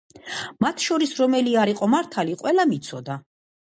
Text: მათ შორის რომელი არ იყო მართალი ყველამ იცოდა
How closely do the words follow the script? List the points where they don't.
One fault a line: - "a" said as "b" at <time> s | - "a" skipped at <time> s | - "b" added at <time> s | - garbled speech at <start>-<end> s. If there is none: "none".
none